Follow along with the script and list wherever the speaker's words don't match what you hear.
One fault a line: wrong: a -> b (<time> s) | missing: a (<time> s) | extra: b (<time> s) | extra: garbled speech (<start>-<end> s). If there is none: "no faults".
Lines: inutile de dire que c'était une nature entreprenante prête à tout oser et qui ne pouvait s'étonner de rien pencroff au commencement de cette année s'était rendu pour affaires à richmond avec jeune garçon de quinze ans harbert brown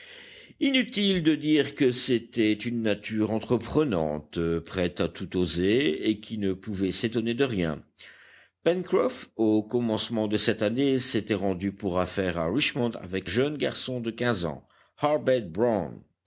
no faults